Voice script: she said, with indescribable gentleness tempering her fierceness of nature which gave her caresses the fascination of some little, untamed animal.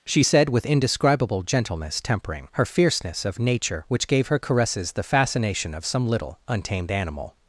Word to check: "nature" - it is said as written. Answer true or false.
true